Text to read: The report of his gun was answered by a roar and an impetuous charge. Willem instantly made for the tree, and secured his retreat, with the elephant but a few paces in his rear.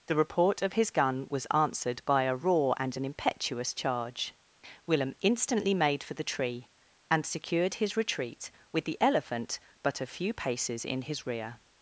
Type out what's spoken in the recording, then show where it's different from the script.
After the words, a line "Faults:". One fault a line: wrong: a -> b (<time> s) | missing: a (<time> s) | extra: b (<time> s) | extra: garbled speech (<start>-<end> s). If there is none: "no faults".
The report of his gun was answered by a roar and an impetuous charge. Willem instantly made for the tree, and secured his retreat, with the elephant but a few paces in his rear.
Faults:
no faults